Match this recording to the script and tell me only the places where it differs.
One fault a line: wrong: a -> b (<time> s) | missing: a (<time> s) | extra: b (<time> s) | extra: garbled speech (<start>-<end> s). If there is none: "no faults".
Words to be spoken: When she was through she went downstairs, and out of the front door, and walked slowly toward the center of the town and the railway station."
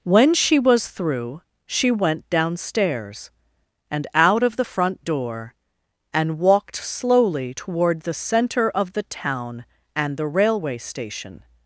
no faults